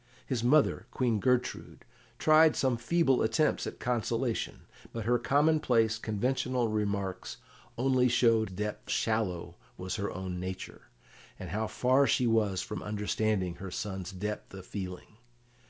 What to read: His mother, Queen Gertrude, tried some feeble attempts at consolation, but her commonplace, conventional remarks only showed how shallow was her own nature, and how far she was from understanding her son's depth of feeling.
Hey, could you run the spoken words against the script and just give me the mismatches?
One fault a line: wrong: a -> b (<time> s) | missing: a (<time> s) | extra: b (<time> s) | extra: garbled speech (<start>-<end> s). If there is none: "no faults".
wrong: how -> depth (8.5 s)